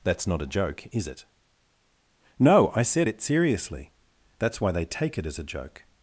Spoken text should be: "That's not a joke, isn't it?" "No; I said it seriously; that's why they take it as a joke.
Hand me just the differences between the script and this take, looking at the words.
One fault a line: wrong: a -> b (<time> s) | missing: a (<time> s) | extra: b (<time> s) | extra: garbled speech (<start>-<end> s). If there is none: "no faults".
wrong: isn't -> is (0.9 s)